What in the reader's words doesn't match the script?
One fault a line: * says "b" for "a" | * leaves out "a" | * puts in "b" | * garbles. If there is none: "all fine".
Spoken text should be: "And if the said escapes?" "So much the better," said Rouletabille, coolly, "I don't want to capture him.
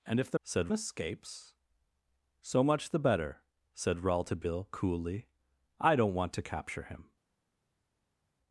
all fine